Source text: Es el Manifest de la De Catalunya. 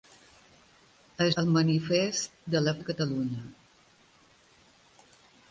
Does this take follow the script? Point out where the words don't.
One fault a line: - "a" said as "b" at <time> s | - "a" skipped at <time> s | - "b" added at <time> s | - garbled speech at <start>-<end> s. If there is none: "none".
none